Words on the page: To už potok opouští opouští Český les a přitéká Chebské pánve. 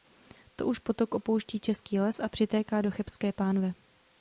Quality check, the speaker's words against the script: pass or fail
fail